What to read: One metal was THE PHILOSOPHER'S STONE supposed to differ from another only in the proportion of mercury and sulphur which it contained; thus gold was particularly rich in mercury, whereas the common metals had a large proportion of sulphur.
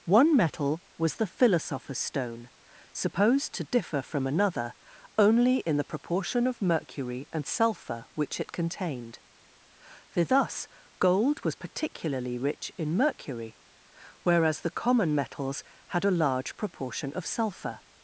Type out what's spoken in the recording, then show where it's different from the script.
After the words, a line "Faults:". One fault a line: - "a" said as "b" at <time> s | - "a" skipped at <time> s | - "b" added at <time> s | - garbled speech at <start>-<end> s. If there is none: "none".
One metal was THE PHILOSOPHER'S STONE supposed to differ from another only in the proportion of mercury and sulphur which it contained; for thus gold was particularly rich in mercury, whereas the common metals had a large proportion of sulphur.
Faults:
- "for" added at 10.1 s